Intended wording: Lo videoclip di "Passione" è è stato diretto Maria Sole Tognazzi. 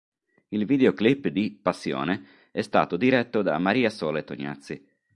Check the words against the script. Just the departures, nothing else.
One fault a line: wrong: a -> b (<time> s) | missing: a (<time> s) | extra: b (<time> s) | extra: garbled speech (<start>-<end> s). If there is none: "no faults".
wrong: Lo -> Il (0.5 s)
missing: è (2.6 s)
extra: da (3.4 s)